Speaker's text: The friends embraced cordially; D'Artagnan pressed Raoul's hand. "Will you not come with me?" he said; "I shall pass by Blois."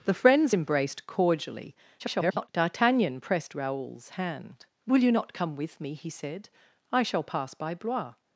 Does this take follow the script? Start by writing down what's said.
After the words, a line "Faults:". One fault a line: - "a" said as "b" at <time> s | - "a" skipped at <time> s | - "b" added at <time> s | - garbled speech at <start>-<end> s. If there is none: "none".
The friends embraced cordially; [garbled] D'Artagnan pressed Raoul's hand. "Will you not come with me?" he said; "I shall pass by Blois."
Faults:
- garbled speech at 2.0-2.5 s